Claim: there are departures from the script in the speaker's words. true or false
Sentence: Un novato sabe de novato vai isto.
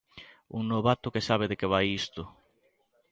true